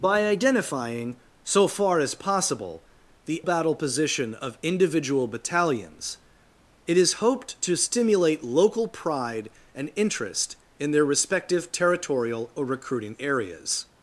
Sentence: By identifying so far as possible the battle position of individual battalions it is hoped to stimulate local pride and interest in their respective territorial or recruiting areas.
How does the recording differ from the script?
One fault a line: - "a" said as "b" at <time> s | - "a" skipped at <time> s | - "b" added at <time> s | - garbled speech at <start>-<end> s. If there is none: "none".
none